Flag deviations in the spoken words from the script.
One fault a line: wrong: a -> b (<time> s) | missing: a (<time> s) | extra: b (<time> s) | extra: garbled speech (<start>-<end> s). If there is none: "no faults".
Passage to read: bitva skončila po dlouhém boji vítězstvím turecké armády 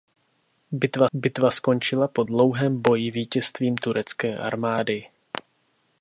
extra: bitva (1.1 s)